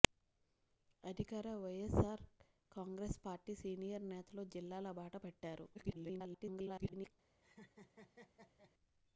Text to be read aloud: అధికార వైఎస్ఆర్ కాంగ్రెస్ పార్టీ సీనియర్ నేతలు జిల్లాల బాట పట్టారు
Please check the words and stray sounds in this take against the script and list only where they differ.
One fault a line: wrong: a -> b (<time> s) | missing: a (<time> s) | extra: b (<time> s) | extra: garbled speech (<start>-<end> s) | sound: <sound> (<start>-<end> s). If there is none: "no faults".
extra: garbled speech (5.7-7.1 s)
sound: laugh (7.4-8.7 s)